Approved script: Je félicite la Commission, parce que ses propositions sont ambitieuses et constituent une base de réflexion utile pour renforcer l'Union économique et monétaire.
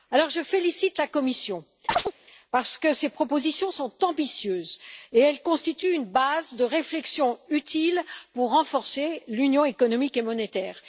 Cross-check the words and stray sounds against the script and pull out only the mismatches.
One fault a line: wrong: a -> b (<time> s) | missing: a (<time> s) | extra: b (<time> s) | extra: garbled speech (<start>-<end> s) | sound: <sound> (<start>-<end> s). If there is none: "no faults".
sound: chirp (1.9-2.1 s)